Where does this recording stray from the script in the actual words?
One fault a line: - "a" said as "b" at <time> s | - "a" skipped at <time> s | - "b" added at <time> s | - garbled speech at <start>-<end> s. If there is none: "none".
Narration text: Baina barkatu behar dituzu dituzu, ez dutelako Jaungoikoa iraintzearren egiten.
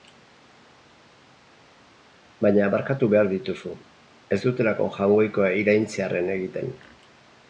- "dituzu" skipped at 3.7 s